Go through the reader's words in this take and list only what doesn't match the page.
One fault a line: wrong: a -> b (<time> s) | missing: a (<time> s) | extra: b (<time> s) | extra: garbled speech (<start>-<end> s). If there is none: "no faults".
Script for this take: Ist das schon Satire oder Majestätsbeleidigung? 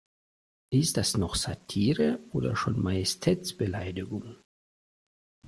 wrong: schon -> noch (1.2 s)
extra: schon (2.5 s)